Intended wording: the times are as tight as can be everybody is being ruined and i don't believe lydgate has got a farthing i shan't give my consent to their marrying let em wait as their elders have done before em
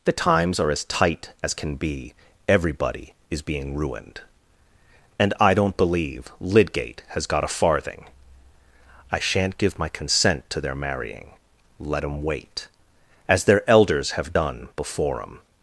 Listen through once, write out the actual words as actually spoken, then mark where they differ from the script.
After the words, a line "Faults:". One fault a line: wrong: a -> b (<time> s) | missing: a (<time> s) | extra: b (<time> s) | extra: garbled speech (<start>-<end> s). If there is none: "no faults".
the times are as tight as can be everybody is being ruined and i don't believe lydgate has got a farthing i shan't give my consent to their marrying let em wait as their elders have done before em
Faults:
no faults